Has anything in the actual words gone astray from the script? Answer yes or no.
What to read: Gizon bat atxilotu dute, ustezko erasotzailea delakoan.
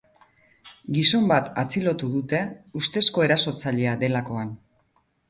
no